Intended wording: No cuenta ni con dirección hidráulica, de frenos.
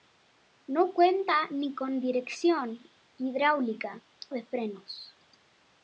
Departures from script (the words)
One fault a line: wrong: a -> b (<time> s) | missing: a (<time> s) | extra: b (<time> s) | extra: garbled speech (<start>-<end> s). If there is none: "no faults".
no faults